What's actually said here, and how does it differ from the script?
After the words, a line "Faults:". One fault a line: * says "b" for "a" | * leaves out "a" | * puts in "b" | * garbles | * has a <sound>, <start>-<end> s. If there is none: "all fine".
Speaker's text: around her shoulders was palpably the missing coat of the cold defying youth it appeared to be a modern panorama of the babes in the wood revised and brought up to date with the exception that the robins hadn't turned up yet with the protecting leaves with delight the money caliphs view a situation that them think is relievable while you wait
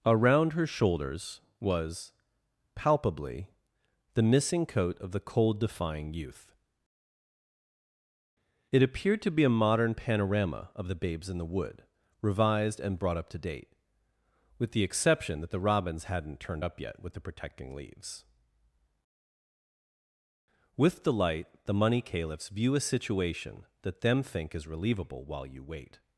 around her shoulders was palpably the missing coat of the cold defying youth it appeared to be a modern panorama of the babes in the wood revised and brought up to date with the exception that the robins hadn't turned up yet with the protecting leaves with delight the money caliphs view a situation that them think is relievable while you wait
Faults:
all fine